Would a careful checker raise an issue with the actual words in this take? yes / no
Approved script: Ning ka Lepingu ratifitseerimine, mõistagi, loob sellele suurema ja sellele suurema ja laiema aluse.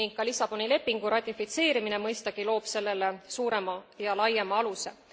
yes